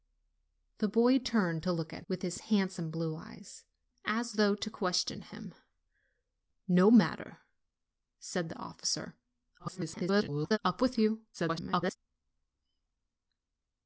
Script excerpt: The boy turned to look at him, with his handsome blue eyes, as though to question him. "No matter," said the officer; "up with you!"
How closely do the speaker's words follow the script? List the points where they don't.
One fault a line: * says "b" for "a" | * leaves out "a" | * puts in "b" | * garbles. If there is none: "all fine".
* leaves out "him"
* garbles
* garbles